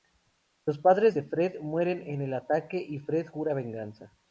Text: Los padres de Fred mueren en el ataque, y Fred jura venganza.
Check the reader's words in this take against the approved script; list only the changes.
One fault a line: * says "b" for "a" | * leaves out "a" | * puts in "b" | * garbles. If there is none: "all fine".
all fine